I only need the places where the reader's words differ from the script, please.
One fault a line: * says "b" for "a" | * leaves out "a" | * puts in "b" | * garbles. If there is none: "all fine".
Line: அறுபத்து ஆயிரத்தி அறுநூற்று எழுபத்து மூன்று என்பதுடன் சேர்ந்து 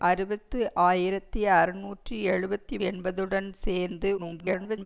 * leaves out "மூன்று"
* garbles